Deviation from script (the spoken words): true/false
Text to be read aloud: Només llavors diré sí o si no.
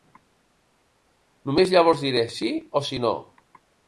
false